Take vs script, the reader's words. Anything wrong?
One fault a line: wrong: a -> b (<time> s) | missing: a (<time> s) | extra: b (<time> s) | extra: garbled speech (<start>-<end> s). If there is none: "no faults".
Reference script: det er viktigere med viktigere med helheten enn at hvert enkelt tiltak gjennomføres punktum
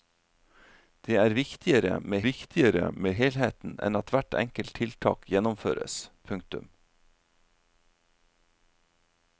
no faults